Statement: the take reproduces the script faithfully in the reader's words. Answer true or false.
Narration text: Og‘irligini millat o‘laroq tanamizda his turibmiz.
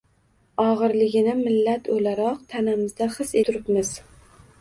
true